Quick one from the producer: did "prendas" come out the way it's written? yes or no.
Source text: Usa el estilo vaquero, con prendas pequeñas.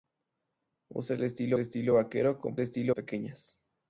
no